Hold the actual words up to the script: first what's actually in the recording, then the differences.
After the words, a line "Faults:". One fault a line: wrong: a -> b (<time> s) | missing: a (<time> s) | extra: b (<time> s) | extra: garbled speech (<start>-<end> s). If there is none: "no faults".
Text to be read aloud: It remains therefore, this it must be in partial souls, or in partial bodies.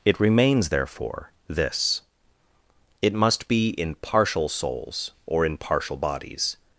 It remains therefore, this it must be in partial souls, or in partial bodies.
Faults:
no faults